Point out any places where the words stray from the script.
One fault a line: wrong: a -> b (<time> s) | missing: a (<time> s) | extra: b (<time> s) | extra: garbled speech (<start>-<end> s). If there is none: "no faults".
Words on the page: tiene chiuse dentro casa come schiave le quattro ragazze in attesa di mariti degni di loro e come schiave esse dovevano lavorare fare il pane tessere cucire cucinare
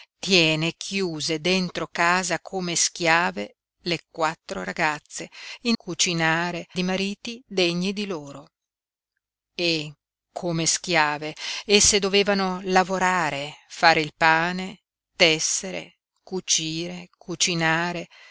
wrong: attesa -> cucinare (5.8 s)